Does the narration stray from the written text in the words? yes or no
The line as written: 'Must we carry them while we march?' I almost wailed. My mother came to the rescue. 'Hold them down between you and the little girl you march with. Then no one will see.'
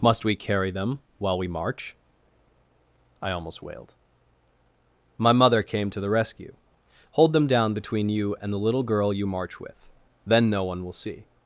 no